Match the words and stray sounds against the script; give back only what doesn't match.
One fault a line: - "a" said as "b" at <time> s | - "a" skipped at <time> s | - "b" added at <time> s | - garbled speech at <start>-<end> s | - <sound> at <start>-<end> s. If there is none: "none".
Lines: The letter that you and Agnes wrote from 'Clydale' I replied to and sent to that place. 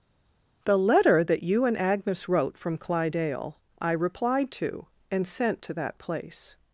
none